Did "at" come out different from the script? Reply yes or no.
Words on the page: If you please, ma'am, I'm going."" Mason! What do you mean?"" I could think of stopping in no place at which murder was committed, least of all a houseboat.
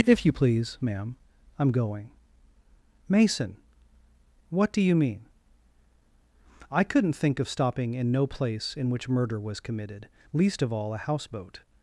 yes